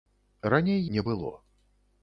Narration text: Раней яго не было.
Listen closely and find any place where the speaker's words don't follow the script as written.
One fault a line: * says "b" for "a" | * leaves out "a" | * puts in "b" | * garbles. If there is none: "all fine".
* leaves out "яго"